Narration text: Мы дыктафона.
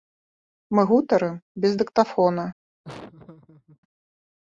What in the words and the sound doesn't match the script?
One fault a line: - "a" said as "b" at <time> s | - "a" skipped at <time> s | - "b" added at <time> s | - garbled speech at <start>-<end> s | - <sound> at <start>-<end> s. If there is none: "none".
- "гутарым без" added at 0.9 s
- laugh at 2.8-3.8 s